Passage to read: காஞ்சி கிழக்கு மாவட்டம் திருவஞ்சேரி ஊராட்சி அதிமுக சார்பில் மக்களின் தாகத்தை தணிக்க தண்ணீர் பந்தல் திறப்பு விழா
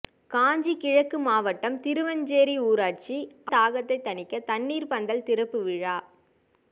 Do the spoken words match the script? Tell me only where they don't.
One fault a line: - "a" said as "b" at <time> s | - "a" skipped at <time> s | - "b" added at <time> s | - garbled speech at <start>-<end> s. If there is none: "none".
- "அதிமுக சார்பில் மக்களின்" skipped at 3.2 s